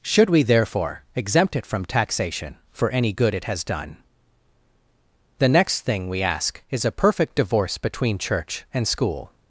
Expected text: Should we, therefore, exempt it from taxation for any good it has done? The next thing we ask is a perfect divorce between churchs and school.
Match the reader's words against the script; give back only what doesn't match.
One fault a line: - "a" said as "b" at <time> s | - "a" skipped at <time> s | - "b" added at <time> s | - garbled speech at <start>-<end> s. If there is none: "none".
- "churchs" said as "church" at 8.2 s